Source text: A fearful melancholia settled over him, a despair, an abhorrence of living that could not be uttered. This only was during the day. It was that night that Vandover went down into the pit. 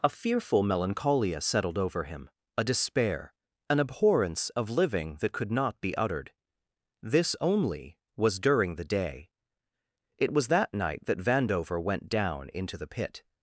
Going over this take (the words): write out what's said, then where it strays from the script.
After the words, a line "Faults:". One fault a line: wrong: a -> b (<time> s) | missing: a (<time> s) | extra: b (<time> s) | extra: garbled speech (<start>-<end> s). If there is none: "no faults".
A fearful melancholia settled over him, a despair, an abhorrence of living that could not be uttered. This only was during the day. It was that night that Vandover went down into the pit.
Faults:
no faults